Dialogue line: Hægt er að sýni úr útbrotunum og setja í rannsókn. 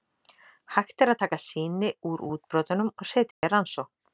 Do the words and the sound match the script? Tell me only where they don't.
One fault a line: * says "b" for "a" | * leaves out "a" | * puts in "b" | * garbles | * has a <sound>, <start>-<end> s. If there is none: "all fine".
* puts in "taka"
* has a dropout, 3.3-3.4 s